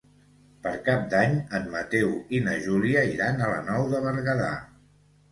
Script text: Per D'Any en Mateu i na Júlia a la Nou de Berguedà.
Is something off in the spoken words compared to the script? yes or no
yes